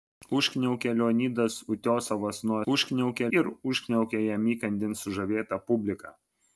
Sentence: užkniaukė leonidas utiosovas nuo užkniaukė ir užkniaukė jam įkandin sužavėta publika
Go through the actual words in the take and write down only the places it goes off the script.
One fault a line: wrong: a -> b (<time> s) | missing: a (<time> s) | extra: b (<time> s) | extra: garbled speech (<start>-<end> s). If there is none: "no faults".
no faults